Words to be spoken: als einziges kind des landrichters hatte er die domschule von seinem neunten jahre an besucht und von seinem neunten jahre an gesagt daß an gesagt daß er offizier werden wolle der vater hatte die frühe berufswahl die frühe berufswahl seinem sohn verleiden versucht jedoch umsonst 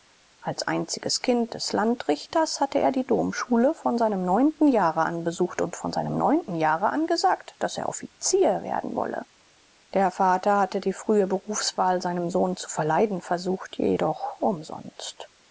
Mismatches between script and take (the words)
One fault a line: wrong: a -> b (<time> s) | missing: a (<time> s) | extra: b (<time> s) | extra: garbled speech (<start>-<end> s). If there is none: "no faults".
missing: an gesagt daß (7.8 s)
missing: die frühe berufswahl (12.0 s)
extra: zu (12.6 s)